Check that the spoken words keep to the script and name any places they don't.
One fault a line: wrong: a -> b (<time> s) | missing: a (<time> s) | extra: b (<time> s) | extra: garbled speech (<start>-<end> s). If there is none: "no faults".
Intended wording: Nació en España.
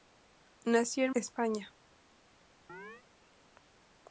no faults